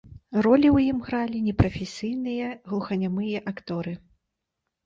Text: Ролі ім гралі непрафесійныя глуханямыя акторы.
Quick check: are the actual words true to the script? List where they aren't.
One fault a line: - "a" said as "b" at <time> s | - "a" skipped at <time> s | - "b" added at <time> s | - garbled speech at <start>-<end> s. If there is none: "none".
- "ў" added at 0.7 s